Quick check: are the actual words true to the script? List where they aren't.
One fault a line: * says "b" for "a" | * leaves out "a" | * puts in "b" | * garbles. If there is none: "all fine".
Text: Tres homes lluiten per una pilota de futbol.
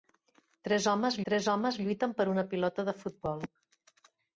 * puts in "tres homes"